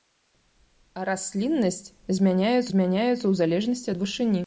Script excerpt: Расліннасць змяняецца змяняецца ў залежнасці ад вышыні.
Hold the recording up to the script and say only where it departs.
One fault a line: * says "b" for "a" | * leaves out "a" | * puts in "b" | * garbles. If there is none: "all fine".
all fine